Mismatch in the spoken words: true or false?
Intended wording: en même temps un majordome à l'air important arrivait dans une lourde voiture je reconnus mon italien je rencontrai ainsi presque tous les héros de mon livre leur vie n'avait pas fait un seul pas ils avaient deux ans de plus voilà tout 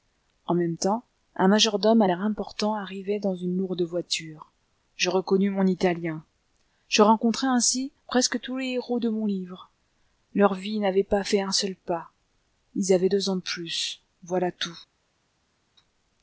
false